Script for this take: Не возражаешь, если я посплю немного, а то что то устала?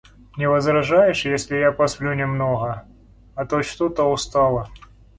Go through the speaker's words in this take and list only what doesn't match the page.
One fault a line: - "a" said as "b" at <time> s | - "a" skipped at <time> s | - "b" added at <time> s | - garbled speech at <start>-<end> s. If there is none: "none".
none